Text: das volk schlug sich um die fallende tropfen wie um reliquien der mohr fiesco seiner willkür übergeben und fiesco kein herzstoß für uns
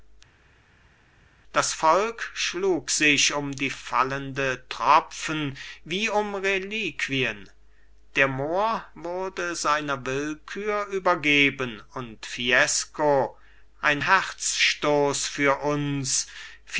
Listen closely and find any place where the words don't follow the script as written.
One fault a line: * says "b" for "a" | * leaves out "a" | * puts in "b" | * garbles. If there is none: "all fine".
* says "wurde" for "fiesco"
* says "ein" for "kein"